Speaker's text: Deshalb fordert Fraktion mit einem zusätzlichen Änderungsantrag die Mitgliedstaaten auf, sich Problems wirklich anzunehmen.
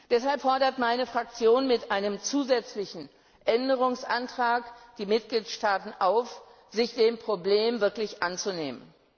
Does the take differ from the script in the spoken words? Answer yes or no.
yes